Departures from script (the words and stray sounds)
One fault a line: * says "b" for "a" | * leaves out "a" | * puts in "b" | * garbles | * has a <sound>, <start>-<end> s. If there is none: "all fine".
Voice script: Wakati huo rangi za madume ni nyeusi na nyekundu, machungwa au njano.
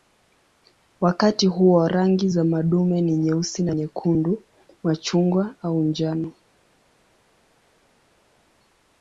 all fine